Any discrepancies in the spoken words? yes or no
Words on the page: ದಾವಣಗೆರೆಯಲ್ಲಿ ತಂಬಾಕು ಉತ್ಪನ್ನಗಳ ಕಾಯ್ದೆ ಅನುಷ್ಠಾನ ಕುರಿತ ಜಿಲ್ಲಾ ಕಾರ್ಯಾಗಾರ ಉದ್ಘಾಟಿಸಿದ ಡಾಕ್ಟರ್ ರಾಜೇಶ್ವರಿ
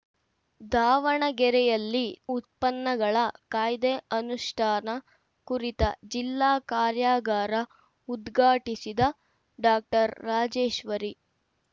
yes